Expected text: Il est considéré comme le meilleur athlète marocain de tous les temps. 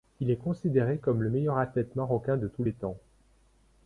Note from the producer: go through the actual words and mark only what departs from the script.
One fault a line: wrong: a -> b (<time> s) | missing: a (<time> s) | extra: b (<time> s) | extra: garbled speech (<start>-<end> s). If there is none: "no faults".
no faults